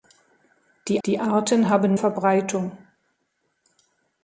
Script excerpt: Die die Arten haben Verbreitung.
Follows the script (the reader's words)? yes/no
yes